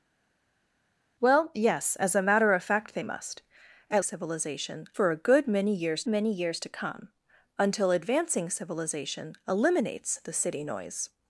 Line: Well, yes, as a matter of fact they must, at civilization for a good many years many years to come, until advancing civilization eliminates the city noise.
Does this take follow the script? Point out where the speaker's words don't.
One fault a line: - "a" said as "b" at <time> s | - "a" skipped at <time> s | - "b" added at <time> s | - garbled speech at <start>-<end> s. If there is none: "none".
none